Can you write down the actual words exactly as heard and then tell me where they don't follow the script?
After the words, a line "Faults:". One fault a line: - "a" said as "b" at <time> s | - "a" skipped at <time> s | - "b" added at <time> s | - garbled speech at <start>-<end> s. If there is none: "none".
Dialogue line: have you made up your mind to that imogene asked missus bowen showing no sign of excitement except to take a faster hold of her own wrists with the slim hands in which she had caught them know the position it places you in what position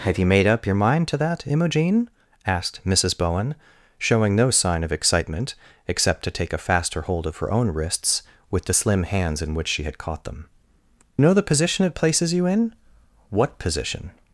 have you made up your mind to that imogene asked missus bowen showing no sign of excitement except to take a faster hold of her own wrists with the slim hands in which she had caught them know the position it places you in what position
Faults:
none